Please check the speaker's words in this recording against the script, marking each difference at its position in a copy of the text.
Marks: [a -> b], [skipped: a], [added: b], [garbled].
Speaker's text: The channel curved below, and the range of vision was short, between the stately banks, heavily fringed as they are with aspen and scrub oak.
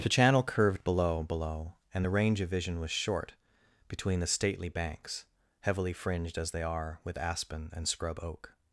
The channel curved below, [added: below] and the range of vision was short, between the stately banks, heavily fringed as they are with aspen and scrub oak.